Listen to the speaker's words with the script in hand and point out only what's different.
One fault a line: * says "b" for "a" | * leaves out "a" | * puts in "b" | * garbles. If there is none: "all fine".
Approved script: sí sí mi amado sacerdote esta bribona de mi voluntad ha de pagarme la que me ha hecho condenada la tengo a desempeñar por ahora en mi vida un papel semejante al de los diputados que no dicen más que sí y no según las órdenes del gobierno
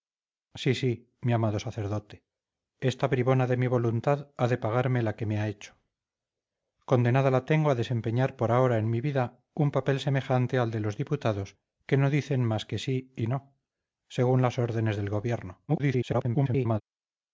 * garbles